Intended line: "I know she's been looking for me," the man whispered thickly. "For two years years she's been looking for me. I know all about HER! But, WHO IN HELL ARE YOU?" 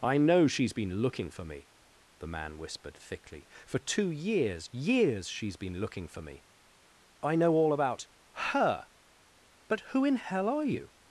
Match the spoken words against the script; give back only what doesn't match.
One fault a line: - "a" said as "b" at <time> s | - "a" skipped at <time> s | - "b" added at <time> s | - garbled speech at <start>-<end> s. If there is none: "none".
none